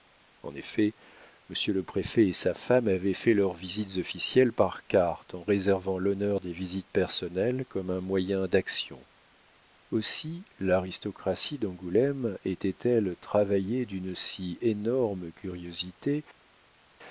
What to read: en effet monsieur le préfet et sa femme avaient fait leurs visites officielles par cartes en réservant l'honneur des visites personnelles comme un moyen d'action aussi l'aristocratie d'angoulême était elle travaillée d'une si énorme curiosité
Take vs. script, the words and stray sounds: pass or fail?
pass